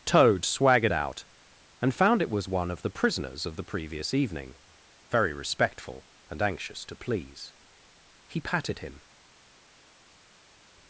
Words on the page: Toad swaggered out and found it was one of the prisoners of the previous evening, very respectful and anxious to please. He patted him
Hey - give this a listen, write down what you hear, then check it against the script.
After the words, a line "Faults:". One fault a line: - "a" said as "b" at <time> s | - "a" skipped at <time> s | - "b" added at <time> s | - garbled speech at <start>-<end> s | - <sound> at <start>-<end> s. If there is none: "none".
Toad swaggered out and found it was one of the prisoners of the previous evening, very respectful and anxious to please. He patted him
Faults:
none